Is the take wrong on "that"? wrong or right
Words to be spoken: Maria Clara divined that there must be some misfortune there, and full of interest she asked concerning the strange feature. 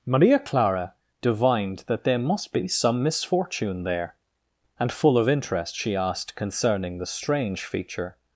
right